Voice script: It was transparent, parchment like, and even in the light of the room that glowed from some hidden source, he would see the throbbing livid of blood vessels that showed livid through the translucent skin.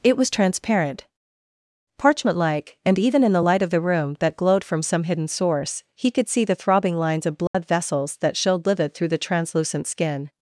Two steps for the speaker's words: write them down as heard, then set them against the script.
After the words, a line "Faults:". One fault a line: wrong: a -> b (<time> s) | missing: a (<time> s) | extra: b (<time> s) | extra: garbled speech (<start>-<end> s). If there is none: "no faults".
It was transparent, parchment like, and even in the light of the room that glowed from some hidden source, he could see the throbbing lines of blood vessels that showed livid through the translucent skin.
Faults:
wrong: would -> could (6.1 s)
wrong: livid -> lines (6.9 s)